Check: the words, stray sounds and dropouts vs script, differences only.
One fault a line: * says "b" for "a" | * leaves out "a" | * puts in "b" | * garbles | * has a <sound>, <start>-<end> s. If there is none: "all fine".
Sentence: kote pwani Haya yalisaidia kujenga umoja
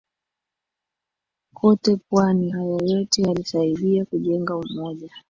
* puts in "yote"